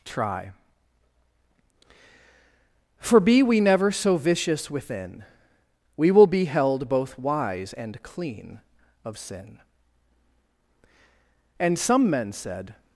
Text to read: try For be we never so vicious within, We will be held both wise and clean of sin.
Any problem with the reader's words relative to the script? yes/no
yes